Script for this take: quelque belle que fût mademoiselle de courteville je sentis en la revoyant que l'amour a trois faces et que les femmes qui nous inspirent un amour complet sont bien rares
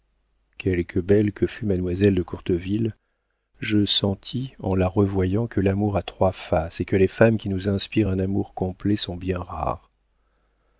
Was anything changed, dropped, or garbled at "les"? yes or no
no